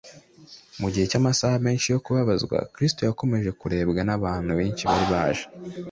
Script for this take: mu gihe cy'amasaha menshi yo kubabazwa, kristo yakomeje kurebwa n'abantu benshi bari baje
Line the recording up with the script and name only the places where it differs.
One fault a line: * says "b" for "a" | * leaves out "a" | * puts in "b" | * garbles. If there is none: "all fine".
all fine